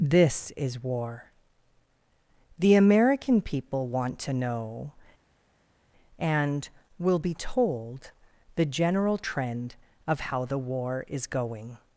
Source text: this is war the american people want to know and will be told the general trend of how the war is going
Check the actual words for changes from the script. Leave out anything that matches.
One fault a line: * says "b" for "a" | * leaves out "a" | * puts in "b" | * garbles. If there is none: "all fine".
all fine